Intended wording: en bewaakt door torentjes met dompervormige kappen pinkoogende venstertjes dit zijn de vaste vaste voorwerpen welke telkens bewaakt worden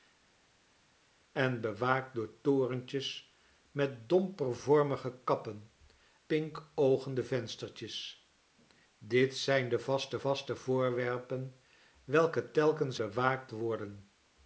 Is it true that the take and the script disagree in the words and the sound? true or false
false